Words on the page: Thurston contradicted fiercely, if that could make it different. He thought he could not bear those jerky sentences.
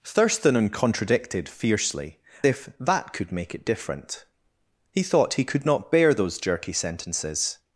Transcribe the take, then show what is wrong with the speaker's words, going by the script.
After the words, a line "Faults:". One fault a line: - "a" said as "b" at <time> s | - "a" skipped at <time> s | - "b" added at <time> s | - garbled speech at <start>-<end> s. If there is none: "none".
Thurston contradicted fiercely, if that could make it different. He thought he could not bear those jerky sentences.
Faults:
none